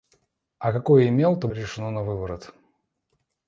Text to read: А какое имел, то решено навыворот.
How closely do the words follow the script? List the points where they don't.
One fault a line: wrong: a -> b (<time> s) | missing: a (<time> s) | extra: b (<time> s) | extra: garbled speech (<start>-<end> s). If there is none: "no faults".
no faults